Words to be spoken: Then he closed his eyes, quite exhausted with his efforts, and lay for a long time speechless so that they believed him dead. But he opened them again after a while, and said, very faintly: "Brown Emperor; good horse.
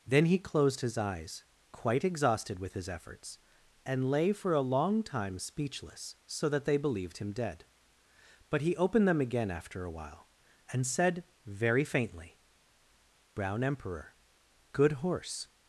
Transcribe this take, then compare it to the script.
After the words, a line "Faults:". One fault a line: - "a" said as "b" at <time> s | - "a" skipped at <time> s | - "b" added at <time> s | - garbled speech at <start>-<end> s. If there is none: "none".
Then he closed his eyes, quite exhausted with his efforts, and lay for a long time speechless so that they believed him dead. But he opened them again after a while, and said, very faintly: "Brown Emperor; good horse.
Faults:
none